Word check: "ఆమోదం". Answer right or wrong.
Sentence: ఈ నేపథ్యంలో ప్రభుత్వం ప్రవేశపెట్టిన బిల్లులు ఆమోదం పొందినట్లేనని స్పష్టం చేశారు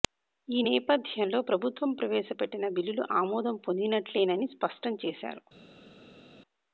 right